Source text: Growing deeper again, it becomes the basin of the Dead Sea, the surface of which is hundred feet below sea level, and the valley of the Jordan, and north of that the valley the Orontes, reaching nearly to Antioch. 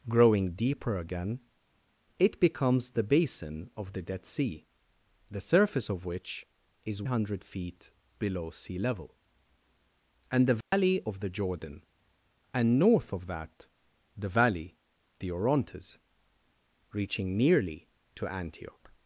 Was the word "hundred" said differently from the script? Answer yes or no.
no